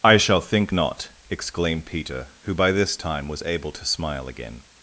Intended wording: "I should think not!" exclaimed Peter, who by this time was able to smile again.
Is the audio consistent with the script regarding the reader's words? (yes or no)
no